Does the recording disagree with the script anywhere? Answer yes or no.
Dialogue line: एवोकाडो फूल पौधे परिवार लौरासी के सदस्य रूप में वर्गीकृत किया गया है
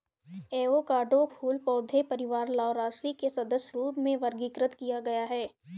no